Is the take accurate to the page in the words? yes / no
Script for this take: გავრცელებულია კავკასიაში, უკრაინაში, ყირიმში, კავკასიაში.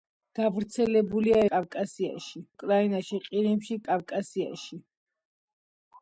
yes